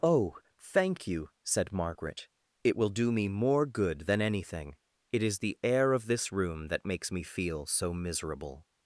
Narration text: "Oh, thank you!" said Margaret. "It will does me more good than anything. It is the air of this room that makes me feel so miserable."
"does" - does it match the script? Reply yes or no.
no